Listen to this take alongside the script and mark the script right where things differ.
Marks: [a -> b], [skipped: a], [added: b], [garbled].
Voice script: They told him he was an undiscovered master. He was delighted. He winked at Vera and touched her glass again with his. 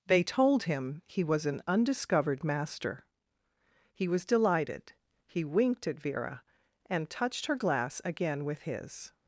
They told him he was an undiscovered master. He was delighted. He winked at Vera and touched her glass again with his.